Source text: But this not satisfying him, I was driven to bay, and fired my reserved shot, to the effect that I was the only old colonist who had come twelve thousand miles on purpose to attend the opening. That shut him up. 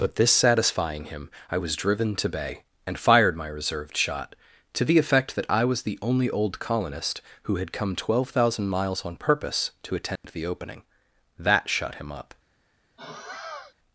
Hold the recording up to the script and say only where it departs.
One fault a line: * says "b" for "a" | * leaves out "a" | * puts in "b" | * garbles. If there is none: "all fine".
* leaves out "not"